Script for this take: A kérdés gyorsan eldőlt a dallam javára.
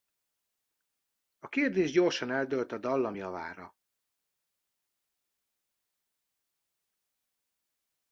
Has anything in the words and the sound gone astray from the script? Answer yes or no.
no